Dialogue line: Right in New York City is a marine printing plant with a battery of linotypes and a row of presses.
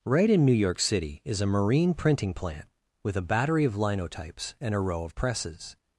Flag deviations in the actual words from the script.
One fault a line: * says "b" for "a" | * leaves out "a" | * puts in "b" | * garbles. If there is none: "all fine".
all fine